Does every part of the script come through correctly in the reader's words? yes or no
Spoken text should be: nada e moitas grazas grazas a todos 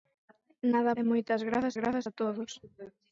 yes